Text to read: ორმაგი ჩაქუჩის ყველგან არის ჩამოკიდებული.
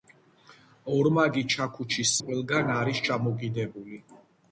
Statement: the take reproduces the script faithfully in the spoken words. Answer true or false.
true